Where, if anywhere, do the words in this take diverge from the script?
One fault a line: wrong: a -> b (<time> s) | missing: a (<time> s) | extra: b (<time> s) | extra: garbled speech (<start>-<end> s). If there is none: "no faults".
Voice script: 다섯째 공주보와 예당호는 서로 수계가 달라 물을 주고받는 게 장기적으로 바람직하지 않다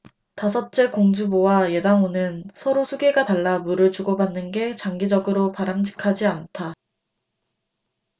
no faults